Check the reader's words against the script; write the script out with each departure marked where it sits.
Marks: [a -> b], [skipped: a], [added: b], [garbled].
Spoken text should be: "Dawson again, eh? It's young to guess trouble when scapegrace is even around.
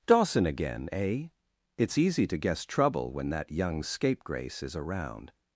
"Dawson again, eh? It's [young -> easy] to guess trouble when [added: that young] scapegrace is [skipped: even] around.